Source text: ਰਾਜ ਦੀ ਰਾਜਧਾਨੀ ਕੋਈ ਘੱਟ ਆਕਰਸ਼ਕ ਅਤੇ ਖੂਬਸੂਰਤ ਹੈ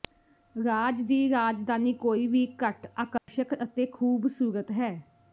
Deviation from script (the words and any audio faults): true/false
true